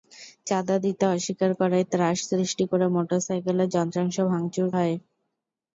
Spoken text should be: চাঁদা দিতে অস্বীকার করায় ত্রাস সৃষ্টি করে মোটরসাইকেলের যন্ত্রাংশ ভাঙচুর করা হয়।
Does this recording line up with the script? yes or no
no